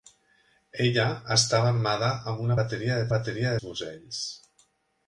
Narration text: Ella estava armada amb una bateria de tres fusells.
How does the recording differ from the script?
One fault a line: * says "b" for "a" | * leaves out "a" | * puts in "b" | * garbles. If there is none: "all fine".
* says "bateria" for "tres"